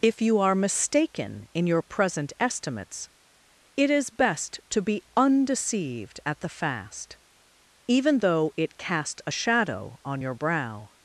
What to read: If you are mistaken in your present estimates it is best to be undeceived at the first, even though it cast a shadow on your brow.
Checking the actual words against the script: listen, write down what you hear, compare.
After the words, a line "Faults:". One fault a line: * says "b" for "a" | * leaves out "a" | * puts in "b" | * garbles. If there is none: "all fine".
If you are mistaken in your present estimates it is best to be undeceived at the fast, even though it cast a shadow on your brow.
Faults:
* says "fast" for "first"